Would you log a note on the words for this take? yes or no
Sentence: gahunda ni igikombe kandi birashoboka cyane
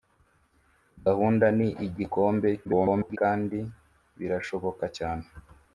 yes